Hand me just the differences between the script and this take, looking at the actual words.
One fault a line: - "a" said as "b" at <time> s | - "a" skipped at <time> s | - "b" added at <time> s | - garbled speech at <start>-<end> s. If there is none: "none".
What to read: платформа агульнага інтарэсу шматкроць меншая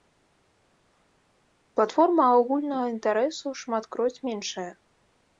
none